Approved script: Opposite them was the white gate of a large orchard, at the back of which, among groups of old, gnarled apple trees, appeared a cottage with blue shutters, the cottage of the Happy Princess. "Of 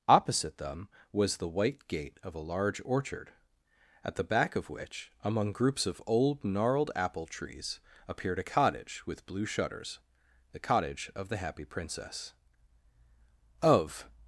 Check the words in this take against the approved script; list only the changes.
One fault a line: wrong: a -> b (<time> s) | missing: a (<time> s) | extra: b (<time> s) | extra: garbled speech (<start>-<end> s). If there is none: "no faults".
no faults